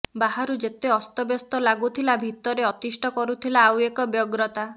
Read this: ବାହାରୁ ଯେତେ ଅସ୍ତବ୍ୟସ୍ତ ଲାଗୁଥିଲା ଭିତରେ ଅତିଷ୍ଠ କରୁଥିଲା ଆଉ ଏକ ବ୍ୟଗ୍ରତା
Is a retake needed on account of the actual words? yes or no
no